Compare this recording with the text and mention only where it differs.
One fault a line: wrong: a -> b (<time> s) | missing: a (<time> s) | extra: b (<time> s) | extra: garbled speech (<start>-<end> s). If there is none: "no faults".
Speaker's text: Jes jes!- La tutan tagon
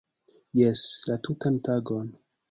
missing: jes (0.8 s)